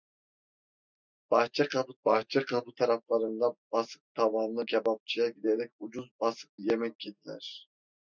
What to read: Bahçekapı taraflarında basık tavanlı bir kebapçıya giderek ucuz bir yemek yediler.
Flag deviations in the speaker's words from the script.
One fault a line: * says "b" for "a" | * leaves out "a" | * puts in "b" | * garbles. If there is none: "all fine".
* puts in "bahçekapı"
* leaves out "bir"
* says "basık" for "bir"